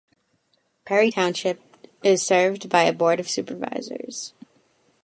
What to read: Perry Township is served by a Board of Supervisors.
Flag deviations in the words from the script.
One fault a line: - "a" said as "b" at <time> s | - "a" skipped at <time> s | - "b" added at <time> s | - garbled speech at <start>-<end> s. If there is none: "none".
none